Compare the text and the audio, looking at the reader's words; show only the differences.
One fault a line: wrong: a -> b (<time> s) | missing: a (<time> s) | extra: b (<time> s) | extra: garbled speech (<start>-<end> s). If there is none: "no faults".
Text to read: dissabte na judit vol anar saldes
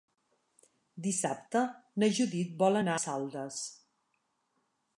no faults